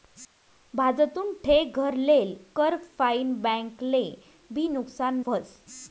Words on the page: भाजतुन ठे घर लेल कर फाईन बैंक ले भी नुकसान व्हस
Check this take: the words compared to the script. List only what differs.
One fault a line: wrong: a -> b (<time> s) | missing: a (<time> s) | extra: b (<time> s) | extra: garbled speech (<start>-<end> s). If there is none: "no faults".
no faults